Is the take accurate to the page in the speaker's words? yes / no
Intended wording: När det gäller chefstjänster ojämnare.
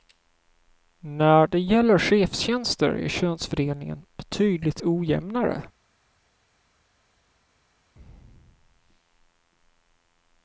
no